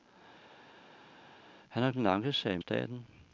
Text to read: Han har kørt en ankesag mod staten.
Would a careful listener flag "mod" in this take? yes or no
yes